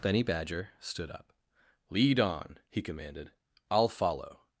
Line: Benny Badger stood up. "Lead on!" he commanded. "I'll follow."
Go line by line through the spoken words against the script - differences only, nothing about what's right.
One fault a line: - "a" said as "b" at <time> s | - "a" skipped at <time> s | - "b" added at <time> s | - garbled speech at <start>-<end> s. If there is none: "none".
none